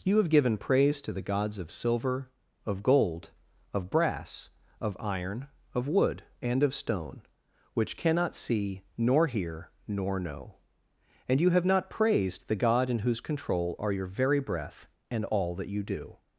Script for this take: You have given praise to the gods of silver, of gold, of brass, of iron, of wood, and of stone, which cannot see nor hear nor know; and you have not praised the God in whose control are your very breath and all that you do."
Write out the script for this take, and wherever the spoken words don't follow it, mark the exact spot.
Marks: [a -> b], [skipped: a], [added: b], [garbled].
You have given praise to the gods of silver, of gold, of brass, of iron, of wood, and of stone, which cannot see nor hear nor know; and you have not praised the God in whose control are your very breath and all that you do."